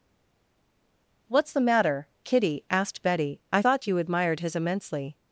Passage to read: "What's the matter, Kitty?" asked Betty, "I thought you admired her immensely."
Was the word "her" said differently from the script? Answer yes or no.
yes